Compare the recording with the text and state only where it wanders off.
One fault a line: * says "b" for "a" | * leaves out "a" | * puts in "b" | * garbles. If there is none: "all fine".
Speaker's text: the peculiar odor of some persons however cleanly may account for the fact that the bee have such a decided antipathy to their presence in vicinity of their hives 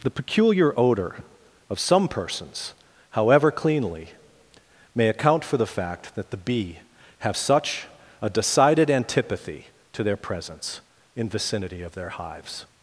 all fine